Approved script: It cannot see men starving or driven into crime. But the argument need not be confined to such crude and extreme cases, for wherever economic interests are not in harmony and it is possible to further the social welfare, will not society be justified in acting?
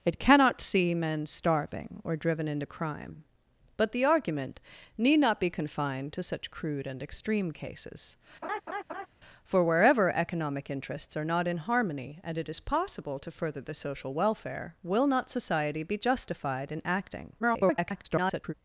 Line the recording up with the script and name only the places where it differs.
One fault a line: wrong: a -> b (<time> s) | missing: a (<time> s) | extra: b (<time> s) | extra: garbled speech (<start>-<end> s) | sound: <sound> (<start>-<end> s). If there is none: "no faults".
sound: laugh (8.4-9.1 s)
extra: garbled speech (17.4-18.5 s)